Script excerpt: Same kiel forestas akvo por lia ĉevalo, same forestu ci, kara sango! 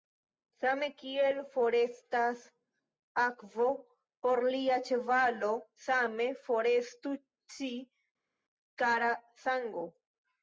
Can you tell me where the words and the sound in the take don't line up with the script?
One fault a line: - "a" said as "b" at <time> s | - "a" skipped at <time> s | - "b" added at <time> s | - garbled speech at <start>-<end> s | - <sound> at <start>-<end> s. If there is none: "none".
none